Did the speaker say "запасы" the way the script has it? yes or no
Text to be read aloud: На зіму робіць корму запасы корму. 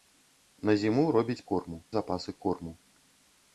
yes